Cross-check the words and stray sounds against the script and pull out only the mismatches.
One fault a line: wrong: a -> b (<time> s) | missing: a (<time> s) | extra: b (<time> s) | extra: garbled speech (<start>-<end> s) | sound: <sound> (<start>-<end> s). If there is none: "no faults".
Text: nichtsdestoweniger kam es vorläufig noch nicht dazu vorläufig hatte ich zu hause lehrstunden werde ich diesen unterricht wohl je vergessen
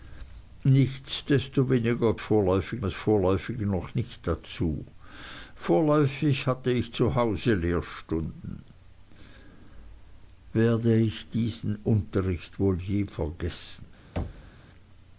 wrong: kam -> vorläufig (2.2 s)
sound: thud (14.2-14.5 s)